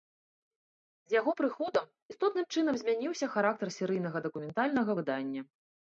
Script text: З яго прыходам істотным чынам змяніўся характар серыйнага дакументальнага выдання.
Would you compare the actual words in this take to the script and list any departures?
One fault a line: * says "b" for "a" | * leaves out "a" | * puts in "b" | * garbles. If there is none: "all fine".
all fine